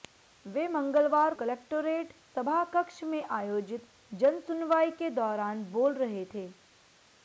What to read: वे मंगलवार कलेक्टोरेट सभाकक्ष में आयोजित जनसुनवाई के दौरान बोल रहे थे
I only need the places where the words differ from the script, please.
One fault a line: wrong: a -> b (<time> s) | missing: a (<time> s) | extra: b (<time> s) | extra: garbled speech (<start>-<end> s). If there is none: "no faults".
no faults